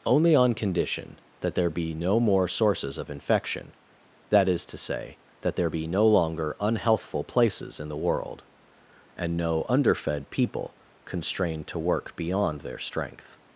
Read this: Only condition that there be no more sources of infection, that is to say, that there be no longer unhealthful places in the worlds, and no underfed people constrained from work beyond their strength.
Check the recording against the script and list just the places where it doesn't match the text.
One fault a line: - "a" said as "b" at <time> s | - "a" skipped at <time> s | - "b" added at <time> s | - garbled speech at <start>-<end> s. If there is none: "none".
- "on" added at 0.3 s
- "worlds" said as "world" at 8.0 s
- "from" said as "to" at 11.7 s